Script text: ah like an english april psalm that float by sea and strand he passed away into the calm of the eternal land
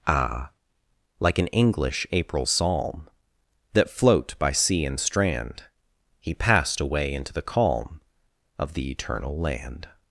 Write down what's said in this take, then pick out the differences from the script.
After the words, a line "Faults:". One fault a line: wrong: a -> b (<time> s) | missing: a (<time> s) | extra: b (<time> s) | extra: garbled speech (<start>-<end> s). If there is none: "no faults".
ah like an english april psalm that float by sea and strand he passed away into the calm of the eternal land
Faults:
no faults